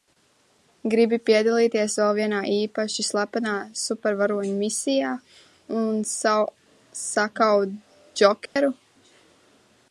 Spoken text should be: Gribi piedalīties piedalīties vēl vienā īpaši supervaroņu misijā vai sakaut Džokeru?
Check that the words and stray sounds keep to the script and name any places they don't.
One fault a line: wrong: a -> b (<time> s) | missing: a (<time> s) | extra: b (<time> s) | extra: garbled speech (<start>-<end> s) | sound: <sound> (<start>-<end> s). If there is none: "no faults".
missing: piedalīties (2.0 s)
extra: slepenā (3.1 s)
wrong: vai -> un (5.8 s)
sound: dropout (8.5-8.6 s)